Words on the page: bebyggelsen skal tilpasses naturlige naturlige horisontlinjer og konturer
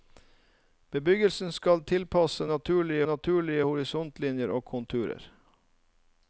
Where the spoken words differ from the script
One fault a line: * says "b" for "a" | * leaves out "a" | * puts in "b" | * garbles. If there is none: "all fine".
all fine